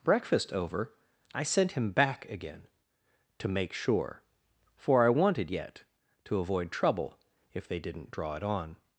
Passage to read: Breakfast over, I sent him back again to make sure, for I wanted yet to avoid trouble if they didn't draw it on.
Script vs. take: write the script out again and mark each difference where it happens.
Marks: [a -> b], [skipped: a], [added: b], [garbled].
Breakfast over, I sent him back again to make sure, for I wanted yet to avoid trouble if they didn't draw it on.